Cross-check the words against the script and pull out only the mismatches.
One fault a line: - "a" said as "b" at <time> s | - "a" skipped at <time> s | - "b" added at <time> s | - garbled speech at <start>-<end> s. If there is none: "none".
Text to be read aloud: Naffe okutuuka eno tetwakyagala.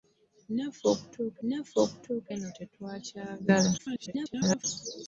- "naffe okutuuka" added at 1.5 s
- garbled speech at 3.8-4.6 s